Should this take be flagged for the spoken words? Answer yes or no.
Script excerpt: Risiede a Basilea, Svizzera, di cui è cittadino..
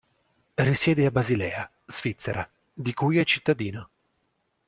no